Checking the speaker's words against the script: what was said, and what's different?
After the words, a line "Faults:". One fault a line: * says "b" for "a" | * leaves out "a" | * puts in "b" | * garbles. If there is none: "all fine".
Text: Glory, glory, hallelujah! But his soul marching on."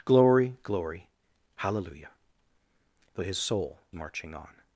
Glory, glory, hallelujah! But his soul marching on."
Faults:
all fine